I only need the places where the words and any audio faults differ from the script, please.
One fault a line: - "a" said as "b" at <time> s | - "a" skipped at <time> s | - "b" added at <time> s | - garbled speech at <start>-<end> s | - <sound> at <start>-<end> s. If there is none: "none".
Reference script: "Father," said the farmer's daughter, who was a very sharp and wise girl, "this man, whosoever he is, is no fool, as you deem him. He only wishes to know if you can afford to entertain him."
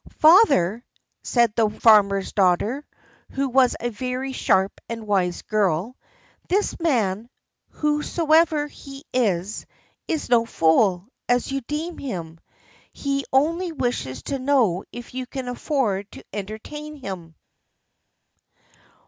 none